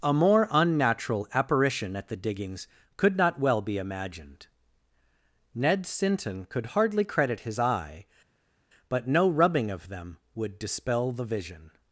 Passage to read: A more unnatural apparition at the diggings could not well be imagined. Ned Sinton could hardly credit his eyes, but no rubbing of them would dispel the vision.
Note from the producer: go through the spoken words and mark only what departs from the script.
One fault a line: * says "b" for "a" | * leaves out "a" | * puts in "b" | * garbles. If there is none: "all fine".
* says "eye" for "eyes"